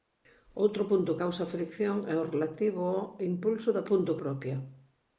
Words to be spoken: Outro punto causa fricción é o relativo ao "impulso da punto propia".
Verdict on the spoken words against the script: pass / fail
pass